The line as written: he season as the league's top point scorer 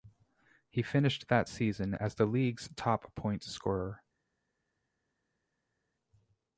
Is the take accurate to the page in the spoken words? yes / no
no